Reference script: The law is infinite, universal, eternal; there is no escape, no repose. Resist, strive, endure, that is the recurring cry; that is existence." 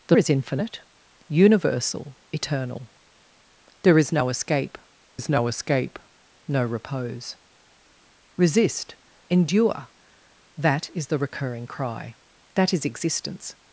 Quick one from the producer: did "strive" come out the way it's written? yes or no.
no